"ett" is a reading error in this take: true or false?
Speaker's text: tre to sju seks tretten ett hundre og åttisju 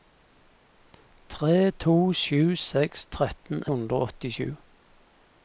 true